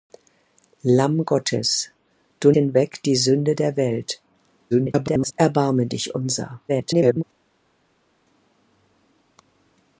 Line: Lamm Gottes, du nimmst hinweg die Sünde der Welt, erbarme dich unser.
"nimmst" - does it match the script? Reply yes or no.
no